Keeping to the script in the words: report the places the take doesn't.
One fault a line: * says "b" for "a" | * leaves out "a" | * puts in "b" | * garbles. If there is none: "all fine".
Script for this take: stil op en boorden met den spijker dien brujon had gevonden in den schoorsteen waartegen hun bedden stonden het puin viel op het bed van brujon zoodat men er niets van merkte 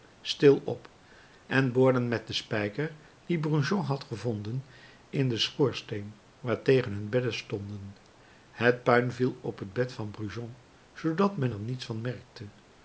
all fine